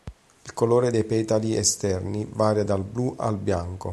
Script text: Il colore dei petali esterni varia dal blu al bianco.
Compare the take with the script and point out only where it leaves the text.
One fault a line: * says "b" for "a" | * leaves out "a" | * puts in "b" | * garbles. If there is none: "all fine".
all fine